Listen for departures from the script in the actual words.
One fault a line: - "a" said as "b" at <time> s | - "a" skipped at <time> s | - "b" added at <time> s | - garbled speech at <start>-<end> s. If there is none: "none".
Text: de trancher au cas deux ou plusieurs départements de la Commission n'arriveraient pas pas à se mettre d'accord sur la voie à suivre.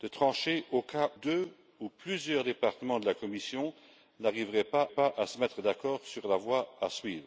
none